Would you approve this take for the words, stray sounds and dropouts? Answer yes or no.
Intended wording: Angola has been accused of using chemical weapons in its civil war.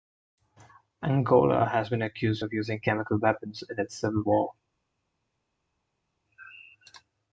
yes